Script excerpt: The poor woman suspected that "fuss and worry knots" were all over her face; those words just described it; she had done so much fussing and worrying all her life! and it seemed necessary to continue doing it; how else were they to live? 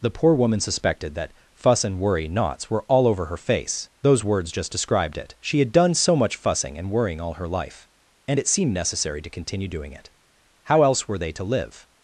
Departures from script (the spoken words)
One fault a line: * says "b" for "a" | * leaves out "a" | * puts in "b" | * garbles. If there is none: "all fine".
all fine